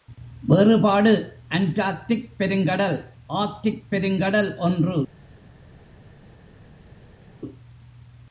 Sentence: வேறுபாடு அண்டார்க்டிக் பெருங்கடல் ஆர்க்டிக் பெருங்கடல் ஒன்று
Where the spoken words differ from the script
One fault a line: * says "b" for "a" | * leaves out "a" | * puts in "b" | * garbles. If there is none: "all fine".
all fine